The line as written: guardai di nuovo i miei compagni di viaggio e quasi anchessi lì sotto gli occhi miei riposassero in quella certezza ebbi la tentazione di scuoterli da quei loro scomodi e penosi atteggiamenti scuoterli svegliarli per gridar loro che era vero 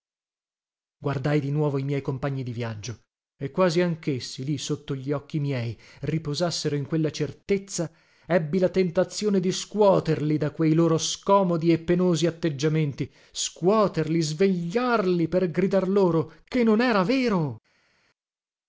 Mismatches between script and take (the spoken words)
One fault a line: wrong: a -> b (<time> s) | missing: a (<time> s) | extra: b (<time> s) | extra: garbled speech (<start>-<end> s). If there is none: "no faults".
extra: non (16.6 s)